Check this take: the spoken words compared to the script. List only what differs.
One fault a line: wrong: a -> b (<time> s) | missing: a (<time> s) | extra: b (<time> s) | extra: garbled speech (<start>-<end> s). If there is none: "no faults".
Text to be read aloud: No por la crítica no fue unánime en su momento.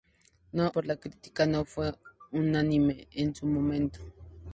no faults